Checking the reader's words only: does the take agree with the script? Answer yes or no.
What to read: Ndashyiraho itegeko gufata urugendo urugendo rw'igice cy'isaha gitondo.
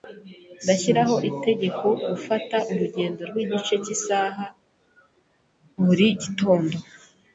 no